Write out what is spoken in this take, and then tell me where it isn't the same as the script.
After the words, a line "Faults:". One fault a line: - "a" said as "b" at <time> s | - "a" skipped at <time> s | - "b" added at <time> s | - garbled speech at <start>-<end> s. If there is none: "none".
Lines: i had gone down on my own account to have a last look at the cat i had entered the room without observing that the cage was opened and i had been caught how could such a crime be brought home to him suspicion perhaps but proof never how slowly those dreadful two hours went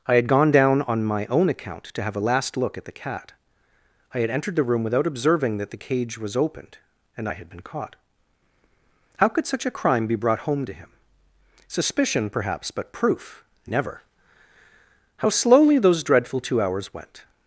i had gone down on my own account to have a last look at the cat i had entered the room without observing that the cage was opened and i had been caught how could such a crime be brought home to him suspicion perhaps but proof never how slowly those dreadful two hours went
Faults:
none